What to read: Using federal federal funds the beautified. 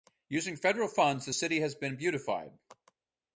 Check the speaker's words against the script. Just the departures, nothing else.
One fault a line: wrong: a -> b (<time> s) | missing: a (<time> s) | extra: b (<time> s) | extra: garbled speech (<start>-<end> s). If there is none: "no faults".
missing: federal (0.9 s)
extra: city has been (1.3 s)